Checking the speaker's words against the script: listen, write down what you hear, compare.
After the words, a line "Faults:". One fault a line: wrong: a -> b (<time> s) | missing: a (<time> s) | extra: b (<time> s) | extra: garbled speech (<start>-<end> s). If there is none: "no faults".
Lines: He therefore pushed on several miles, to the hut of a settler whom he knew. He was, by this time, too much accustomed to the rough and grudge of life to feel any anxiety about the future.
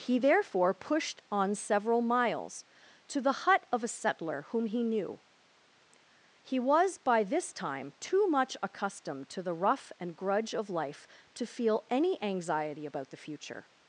He therefore pushed on several miles, to the hut of a settler whom he knew. He was, by this time, too much accustomed to the rough and grudge of life to feel any anxiety about the future.
Faults:
no faults